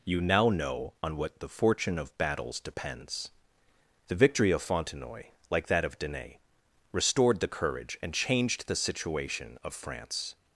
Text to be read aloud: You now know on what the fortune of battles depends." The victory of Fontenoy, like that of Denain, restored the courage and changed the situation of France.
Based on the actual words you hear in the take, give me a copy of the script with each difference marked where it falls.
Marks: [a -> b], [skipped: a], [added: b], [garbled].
You now know on what the fortune of battles depends." The victory of Fontenoy, like that of Denain, restored the courage and changed the situation of France.